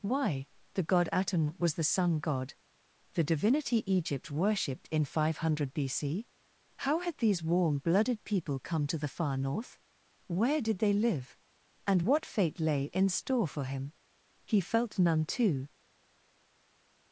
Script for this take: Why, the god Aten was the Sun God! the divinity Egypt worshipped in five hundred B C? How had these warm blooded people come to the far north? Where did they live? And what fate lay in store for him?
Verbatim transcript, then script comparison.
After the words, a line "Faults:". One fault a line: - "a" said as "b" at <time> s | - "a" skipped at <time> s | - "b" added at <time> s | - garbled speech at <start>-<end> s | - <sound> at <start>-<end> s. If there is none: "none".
Why, the god Aten was the Sun God! the divinity Egypt worshipped in five hundred B C? How had these warm blooded people come to the far north? Where did they live? And what fate lay in store for him? He felt none too
Faults:
- "He felt none too" added at 14.5 s